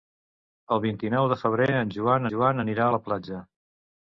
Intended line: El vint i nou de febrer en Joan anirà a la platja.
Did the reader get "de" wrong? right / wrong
right